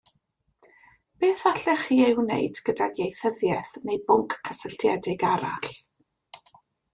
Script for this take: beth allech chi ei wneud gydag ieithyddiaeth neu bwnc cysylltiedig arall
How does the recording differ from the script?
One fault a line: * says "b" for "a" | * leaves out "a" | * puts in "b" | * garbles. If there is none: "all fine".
all fine